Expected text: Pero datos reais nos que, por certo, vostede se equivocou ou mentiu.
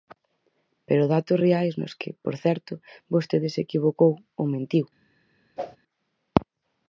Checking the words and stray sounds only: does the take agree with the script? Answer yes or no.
no